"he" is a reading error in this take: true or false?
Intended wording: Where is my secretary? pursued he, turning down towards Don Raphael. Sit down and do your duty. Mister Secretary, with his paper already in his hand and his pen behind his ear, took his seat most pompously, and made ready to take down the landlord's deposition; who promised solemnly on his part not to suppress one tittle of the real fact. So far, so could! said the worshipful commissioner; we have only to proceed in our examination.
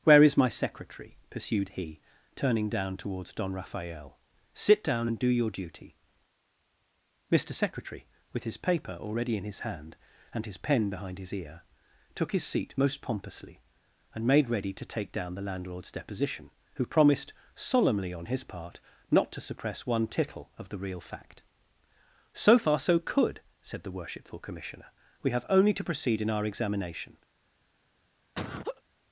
false